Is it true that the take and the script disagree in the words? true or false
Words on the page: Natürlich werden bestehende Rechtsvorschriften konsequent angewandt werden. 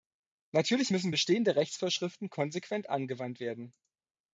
true